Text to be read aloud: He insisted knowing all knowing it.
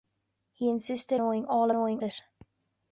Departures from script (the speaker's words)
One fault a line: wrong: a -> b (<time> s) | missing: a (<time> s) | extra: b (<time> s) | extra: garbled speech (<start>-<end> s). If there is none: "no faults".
no faults